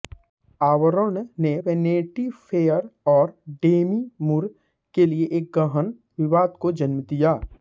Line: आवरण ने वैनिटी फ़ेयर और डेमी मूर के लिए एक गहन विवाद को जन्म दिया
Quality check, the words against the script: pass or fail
pass